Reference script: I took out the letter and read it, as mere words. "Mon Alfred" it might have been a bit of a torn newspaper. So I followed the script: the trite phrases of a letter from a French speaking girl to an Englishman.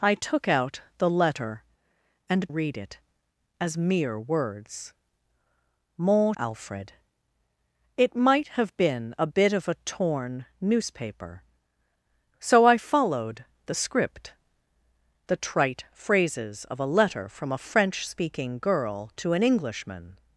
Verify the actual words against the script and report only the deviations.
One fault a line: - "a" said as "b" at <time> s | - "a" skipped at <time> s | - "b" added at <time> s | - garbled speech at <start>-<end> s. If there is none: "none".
none